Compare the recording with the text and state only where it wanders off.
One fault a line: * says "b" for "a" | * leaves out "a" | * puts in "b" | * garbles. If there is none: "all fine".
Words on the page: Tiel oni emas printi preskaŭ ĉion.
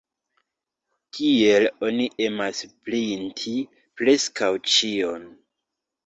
all fine